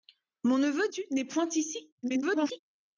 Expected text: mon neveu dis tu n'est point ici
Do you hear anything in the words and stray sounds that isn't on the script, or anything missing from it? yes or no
yes